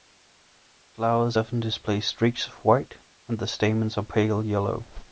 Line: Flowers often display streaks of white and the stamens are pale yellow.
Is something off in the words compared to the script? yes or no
no